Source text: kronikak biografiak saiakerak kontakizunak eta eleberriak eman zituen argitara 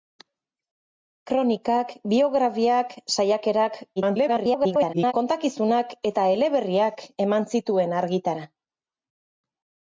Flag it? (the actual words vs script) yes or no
yes